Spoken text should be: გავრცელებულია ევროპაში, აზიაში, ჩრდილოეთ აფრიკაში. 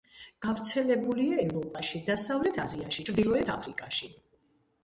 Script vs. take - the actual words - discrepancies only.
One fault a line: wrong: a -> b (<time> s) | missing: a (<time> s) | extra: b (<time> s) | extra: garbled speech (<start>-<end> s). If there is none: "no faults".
extra: დასავლეთ (2.1 s)